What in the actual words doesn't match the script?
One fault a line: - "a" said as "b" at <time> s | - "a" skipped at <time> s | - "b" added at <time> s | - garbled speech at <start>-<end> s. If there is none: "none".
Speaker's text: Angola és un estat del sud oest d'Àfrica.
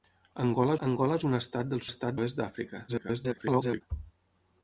- "angola" added at 0.9 s
- "sud" said as "estat" at 1.9 s
- garbled speech at 2.9-3.8 s